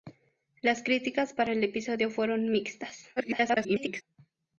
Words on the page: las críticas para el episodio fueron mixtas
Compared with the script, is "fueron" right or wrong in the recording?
right